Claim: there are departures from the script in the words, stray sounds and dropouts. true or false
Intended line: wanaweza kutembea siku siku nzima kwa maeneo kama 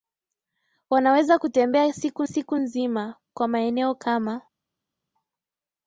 false